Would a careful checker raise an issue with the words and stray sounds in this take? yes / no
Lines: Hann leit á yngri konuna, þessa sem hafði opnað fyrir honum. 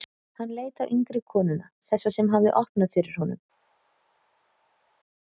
no